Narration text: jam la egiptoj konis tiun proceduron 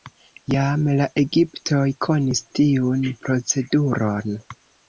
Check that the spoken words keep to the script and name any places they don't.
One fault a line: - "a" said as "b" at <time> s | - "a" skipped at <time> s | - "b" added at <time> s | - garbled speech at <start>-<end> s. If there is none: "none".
none